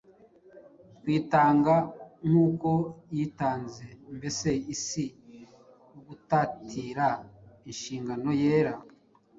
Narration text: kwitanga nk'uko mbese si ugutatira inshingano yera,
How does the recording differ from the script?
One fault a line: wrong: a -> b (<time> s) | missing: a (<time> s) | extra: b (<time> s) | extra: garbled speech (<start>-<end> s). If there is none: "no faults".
extra: yitanze (3.1 s)